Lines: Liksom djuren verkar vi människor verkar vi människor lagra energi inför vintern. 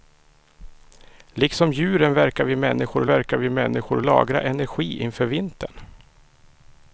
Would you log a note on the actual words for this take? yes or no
no